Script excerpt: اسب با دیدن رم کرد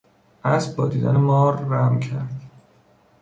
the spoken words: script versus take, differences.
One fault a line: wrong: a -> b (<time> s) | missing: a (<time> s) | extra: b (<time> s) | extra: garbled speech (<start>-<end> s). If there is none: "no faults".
extra: مار (1.2 s)